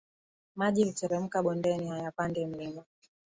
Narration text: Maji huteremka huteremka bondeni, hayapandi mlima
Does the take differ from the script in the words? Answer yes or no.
yes